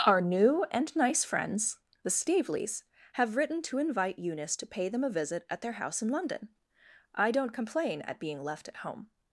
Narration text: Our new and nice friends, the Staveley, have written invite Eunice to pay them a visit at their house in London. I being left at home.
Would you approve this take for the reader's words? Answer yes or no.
no